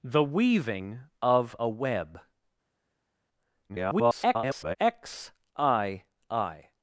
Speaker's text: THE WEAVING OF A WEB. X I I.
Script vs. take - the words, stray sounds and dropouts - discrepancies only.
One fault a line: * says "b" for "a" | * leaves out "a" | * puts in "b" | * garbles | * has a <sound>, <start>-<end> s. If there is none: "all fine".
* garbles